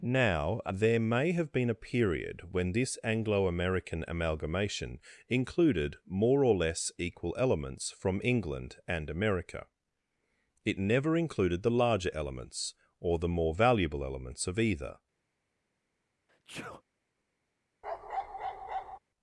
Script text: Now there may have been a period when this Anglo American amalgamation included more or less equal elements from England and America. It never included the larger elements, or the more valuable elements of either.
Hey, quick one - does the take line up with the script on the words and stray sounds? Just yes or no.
no